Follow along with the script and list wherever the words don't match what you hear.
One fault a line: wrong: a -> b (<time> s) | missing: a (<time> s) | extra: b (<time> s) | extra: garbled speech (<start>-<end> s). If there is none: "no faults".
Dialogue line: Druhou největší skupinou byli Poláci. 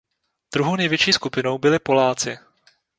no faults